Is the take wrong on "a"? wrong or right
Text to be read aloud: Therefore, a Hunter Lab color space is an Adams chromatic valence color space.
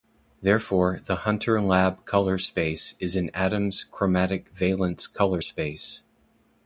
wrong